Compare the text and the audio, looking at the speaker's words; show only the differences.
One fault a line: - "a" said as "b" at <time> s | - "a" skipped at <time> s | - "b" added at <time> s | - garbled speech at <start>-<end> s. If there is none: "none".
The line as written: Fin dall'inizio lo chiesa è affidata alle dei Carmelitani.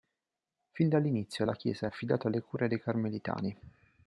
- "lo" said as "la" at 1.4 s
- "cure" added at 2.4 s